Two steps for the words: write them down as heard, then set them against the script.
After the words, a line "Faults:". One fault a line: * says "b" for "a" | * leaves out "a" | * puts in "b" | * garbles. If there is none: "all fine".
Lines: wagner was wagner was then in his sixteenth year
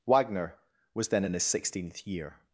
wagner was then in his sixteenth year
Faults:
* leaves out "wagner was"